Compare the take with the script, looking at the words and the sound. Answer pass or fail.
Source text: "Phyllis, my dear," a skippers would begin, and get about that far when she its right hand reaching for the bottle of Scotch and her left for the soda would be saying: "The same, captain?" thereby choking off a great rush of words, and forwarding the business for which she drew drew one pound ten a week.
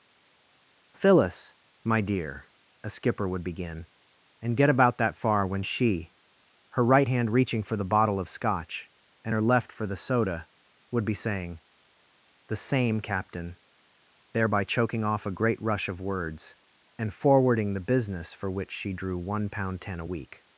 fail